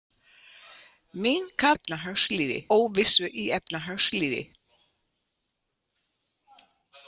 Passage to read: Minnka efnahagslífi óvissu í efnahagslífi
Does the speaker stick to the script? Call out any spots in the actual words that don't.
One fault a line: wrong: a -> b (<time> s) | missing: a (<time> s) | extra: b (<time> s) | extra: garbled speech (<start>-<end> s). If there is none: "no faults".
no faults